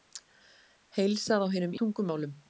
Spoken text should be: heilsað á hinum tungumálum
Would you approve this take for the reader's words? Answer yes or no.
yes